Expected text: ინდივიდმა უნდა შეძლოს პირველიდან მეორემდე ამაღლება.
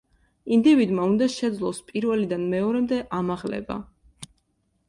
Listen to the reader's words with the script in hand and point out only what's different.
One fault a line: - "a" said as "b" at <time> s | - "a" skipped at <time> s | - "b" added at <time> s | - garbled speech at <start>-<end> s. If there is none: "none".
none